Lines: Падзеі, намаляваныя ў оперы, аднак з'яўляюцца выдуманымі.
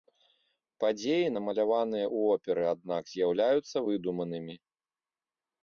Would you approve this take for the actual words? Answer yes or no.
yes